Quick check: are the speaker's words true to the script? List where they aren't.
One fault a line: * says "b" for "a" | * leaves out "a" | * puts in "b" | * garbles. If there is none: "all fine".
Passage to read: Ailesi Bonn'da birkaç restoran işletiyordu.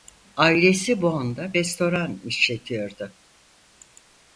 * leaves out "birkaç"